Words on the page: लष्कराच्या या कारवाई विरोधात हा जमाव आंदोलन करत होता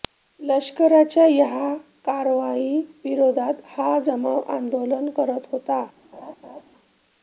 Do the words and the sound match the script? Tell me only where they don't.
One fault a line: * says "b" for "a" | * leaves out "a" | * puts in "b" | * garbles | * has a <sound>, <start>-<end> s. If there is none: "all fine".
* has a laugh, 6.1-6.6 s